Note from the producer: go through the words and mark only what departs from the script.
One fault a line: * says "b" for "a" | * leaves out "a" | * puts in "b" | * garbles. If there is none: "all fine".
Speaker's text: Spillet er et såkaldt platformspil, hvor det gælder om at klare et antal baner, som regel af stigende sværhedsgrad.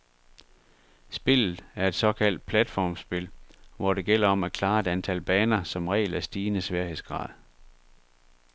all fine